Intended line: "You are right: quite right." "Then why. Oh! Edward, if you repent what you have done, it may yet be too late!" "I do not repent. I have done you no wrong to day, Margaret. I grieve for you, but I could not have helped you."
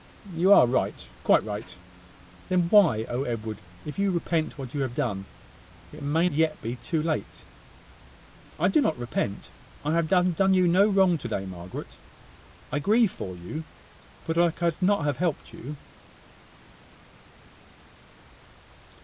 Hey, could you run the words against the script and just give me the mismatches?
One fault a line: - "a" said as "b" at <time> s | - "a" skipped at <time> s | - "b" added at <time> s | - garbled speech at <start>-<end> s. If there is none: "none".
none